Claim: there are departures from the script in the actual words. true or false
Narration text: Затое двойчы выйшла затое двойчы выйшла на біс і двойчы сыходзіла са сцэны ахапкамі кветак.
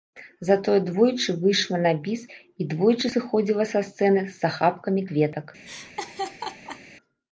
true